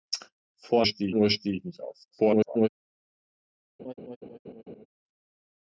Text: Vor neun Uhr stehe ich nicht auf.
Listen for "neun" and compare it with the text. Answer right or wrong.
wrong